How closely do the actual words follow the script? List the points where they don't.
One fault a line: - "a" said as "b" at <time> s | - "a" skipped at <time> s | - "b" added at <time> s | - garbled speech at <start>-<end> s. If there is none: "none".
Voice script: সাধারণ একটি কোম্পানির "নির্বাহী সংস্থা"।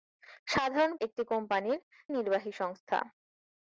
none